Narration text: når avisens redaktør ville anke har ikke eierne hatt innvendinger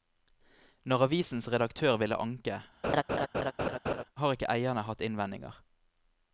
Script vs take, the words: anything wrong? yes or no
no